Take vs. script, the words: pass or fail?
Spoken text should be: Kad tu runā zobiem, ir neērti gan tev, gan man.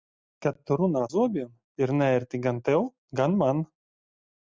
pass